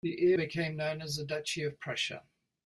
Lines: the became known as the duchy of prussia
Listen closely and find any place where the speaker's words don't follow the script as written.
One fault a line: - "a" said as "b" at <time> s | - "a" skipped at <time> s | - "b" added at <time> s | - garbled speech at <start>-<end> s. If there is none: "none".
none